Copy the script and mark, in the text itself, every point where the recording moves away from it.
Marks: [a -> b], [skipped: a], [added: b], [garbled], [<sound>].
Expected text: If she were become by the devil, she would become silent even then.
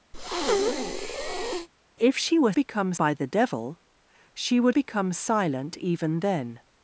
[breath] If she were become by the devil, she would become silent even then.